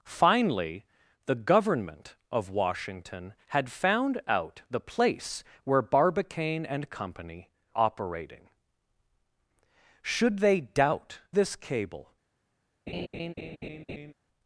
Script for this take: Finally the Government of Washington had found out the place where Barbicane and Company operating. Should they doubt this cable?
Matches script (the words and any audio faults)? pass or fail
fail